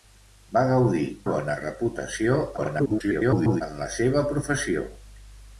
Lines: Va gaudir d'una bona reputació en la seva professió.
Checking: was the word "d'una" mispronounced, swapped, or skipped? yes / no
yes